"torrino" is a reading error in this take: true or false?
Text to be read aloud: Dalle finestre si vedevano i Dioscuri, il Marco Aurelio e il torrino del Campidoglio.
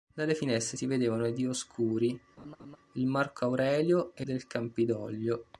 true